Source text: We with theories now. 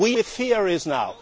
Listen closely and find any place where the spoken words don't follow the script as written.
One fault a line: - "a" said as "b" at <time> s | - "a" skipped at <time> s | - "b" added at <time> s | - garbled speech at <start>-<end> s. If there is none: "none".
none